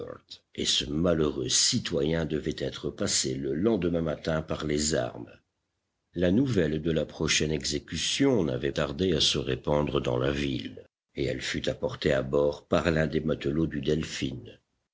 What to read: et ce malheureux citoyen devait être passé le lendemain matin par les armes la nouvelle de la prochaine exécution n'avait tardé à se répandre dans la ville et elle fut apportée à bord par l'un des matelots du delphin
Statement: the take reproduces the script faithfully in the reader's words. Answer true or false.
true